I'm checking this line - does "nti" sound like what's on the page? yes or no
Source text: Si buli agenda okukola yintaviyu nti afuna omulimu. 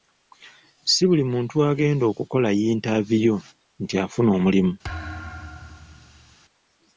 yes